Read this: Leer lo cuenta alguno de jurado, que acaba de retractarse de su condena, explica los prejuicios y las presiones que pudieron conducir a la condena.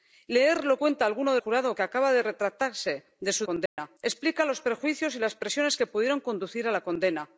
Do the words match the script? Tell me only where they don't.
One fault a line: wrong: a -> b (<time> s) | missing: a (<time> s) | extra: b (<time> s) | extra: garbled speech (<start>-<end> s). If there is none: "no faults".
no faults